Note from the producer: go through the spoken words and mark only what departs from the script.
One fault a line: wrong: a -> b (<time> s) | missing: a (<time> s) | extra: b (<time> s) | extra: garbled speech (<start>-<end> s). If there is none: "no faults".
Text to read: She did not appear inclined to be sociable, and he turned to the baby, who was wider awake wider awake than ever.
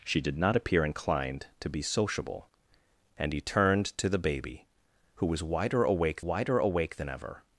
no faults